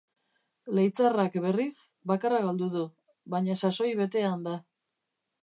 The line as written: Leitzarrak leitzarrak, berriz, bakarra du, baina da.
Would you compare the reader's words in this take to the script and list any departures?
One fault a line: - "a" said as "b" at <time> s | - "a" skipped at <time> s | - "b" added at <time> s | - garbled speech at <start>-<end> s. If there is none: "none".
- "leitzarrak" skipped at 1.4 s
- "galdu" added at 2.5 s
- "sasoi betean" added at 3.6 s